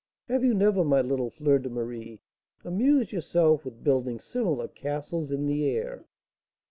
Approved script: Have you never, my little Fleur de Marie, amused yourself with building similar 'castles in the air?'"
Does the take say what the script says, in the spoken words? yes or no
yes